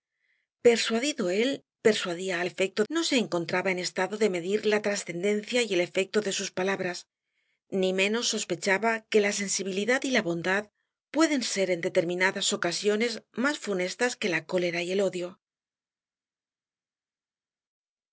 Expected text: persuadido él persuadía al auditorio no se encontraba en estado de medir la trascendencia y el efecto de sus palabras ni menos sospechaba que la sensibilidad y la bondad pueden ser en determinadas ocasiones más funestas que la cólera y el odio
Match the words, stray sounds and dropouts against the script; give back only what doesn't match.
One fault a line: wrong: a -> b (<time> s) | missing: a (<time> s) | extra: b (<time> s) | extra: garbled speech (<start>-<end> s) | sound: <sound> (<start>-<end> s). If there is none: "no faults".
wrong: auditorio -> efecto (2.4 s)